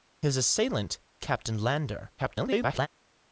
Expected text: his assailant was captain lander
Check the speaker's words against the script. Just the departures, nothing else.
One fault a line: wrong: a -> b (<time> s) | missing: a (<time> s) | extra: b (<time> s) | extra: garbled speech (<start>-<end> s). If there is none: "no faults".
missing: was (1.0 s)
extra: garbled speech (2.2-2.9 s)